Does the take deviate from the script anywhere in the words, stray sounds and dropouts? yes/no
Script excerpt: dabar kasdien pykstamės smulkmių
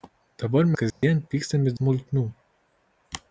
yes